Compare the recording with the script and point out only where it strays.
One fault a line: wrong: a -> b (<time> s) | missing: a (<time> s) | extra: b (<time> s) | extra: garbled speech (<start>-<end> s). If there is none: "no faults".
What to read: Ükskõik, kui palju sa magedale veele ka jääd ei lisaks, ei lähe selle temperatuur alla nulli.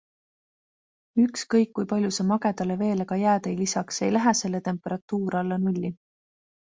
no faults